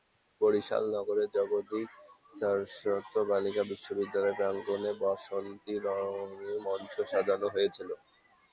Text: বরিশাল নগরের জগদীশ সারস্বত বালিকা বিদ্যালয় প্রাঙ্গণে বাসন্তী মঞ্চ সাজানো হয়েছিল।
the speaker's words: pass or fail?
fail